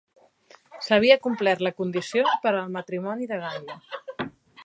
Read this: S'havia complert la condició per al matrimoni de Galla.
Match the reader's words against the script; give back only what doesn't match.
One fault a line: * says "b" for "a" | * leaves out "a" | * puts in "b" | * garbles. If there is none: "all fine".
all fine